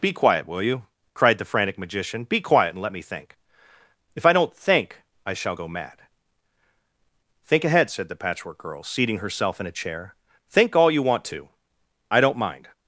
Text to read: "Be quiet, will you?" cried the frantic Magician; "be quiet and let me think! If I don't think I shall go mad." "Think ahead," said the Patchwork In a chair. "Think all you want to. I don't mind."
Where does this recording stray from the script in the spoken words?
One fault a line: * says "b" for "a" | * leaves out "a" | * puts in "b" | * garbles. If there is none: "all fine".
* puts in "Girl seating herself"